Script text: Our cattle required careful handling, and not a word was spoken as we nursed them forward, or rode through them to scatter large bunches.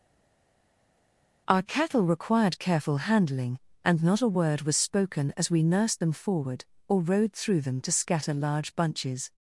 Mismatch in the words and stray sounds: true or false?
false